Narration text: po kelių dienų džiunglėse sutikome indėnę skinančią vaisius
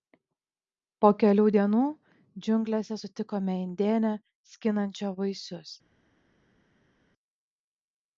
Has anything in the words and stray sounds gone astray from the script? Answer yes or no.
no